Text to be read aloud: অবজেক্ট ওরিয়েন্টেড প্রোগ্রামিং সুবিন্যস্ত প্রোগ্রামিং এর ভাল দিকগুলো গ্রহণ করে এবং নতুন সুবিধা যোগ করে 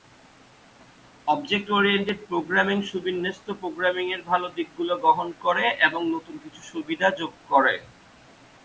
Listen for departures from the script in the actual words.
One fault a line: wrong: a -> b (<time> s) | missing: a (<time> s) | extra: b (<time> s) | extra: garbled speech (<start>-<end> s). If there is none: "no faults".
extra: কিছু (6.4 s)